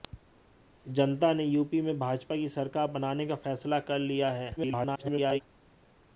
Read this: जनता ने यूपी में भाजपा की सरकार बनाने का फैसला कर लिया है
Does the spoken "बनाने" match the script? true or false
true